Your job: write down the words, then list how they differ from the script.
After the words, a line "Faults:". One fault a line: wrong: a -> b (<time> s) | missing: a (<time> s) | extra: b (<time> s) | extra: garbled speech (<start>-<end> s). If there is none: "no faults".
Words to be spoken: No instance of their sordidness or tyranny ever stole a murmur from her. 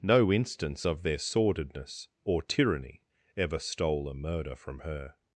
No instance of their sordidness or tyranny ever stole a murder from her.
Faults:
wrong: murmur -> murder (4.1 s)